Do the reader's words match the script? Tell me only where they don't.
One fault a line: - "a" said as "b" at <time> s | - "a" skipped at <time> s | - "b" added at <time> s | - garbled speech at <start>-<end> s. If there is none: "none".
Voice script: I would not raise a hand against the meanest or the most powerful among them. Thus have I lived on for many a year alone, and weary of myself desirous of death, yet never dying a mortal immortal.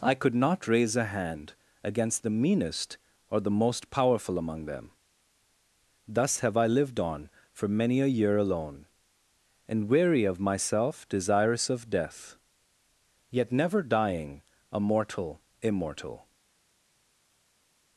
- "would" said as "could" at 0.1 s